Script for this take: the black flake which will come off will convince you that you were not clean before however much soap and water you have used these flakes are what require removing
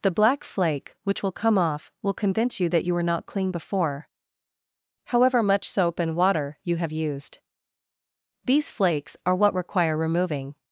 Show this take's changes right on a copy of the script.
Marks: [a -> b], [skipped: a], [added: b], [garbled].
the black flake which will come off will convince you that you were not clean before however much soap and water you have used these flakes are what require removing